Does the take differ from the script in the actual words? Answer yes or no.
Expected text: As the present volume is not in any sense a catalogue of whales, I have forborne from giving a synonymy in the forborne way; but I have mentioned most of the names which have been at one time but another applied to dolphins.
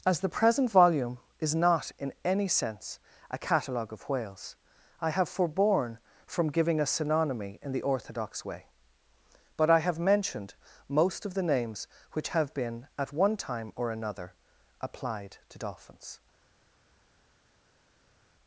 yes